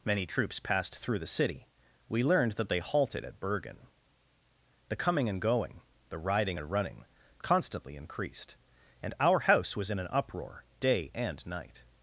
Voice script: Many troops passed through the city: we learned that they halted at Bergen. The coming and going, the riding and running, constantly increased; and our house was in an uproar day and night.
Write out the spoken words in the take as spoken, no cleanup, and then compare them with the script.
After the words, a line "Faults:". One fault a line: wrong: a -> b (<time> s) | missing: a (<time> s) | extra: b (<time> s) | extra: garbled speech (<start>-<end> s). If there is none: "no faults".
Many troops passed through the city: we learned that they halted at Bergen. The coming and going, the riding and running, constantly increased; and our house was in an uproar day and night.
Faults:
no faults